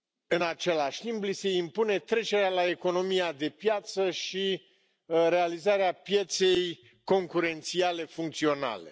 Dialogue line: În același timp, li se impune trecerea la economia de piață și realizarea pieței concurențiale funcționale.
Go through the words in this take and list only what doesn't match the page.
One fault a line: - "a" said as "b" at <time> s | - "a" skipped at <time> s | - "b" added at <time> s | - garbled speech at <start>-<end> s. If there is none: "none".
none